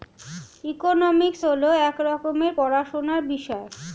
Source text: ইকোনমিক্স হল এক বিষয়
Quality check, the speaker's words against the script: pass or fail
fail